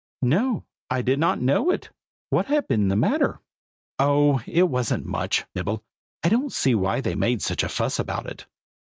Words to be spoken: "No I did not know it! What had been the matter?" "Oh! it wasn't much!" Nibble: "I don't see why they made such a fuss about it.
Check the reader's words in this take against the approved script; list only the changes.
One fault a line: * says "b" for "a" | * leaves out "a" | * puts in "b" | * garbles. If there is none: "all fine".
all fine